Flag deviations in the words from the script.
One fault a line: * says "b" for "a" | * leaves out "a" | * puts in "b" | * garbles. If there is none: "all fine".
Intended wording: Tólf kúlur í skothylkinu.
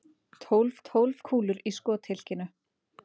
* puts in "tólf"